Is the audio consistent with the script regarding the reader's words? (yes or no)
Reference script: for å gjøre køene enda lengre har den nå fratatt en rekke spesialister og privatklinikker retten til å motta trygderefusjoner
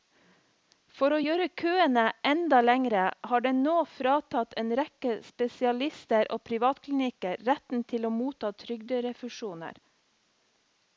yes